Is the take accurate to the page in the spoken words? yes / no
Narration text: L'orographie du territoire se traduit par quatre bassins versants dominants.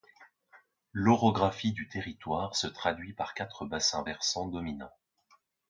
yes